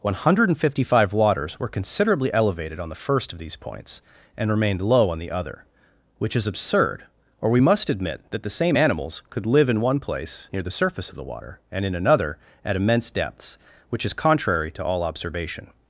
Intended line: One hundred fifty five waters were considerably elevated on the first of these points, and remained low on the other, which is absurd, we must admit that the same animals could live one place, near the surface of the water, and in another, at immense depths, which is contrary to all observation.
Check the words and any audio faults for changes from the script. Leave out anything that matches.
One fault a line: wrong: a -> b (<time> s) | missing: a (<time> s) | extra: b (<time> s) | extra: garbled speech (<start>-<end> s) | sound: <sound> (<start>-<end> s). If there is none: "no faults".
extra: or (7.4 s)
extra: in (9.7 s)